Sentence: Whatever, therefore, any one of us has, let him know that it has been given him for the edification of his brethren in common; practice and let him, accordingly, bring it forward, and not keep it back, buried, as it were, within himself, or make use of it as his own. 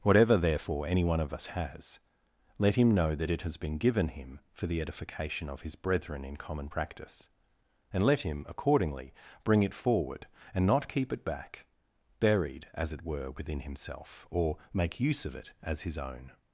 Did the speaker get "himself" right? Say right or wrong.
right